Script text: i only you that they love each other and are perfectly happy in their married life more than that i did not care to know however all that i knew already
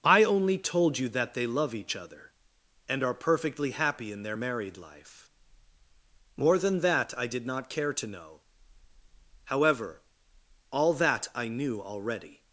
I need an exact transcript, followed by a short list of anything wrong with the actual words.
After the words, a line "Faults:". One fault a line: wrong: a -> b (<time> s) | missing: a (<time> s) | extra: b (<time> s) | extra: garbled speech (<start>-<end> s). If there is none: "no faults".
i only told you that they love each other and are perfectly happy in their married life more than that i did not care to know however all that i knew already
Faults:
extra: told (0.6 s)